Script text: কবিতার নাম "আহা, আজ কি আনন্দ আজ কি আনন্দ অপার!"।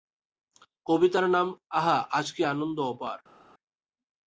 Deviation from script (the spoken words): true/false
true